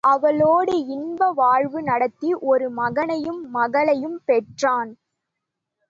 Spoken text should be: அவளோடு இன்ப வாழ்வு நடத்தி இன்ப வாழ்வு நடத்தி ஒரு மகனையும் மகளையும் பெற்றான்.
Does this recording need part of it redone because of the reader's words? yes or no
yes